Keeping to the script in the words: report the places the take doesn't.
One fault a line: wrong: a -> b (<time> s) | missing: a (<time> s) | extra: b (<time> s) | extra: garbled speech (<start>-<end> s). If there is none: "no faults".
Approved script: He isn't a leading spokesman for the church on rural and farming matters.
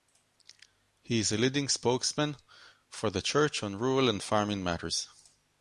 wrong: isn't -> is (1.2 s)